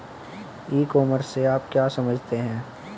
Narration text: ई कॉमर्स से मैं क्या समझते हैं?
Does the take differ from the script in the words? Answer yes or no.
yes